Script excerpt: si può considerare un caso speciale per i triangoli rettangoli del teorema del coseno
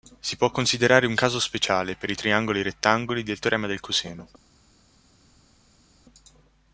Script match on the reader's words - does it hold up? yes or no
yes